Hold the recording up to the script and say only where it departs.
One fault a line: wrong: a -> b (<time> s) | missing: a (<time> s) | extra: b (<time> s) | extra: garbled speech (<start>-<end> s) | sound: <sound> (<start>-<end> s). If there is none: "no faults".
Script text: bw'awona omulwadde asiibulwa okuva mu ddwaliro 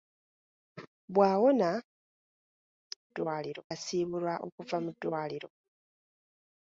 wrong: omulwadde -> ddwaliro (3.1 s)